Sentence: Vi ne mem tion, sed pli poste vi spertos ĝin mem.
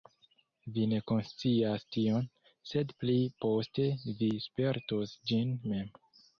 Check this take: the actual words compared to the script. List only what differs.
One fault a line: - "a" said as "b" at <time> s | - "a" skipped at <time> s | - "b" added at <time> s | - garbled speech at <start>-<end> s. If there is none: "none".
- "mem" said as "konscias" at 1.1 s